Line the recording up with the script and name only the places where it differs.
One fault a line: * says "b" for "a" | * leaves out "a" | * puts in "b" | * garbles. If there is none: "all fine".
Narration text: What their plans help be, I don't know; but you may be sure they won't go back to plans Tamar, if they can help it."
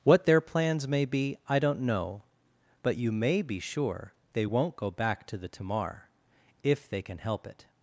* says "may" for "help"
* says "the" for "plans"